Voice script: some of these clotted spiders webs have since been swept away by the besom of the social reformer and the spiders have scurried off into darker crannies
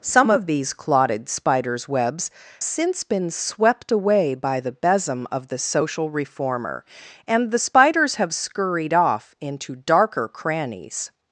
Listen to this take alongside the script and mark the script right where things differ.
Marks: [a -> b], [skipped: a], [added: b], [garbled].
some of these clotted spiders webs [skipped: have] since been swept away by the besom of the social reformer and the spiders have scurried off into darker crannies